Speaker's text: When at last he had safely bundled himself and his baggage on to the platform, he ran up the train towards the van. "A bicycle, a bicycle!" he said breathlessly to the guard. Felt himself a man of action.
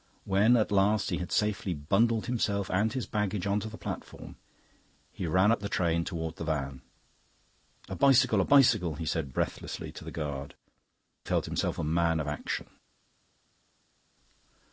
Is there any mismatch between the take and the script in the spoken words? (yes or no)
no